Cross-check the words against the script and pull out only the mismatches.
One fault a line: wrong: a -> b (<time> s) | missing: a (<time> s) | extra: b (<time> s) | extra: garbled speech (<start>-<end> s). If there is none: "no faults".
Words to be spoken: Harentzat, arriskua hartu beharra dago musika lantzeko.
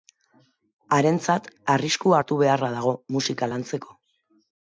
no faults